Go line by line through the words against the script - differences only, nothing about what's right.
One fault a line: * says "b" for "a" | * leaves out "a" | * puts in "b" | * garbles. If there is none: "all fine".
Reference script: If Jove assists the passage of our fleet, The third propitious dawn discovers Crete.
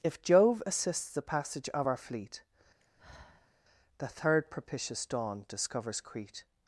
all fine